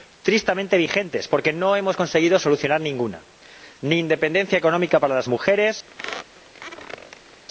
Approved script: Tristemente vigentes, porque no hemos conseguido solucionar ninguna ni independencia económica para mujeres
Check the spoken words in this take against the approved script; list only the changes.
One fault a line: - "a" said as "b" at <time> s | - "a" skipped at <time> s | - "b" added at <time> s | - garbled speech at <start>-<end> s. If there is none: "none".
- "las" added at 5.1 s